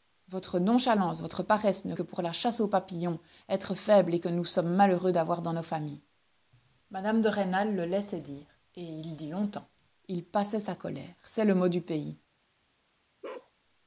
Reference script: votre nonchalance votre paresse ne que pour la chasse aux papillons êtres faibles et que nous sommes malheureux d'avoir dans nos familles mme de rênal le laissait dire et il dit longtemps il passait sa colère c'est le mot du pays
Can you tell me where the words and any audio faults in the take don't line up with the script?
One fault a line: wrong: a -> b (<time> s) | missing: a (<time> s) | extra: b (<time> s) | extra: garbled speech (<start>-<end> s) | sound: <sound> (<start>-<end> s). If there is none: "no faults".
sound: bark (13.2-13.5 s)